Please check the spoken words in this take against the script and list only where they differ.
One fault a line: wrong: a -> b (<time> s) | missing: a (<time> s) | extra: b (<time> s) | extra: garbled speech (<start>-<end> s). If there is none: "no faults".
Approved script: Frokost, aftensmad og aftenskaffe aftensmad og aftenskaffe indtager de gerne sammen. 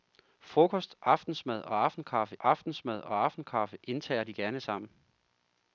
no faults